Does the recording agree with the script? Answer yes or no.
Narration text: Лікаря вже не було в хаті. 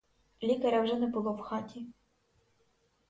yes